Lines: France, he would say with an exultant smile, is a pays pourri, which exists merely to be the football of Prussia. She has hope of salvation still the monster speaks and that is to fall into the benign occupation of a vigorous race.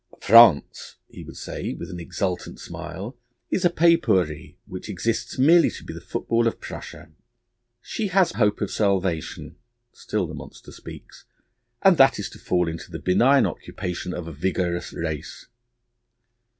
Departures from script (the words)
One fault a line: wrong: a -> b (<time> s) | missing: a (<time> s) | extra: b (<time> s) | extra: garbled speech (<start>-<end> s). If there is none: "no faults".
no faults